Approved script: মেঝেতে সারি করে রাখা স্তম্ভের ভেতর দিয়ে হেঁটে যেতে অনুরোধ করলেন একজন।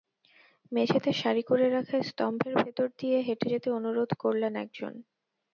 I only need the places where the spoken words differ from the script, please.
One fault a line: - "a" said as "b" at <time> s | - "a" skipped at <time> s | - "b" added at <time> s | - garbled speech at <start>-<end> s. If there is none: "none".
none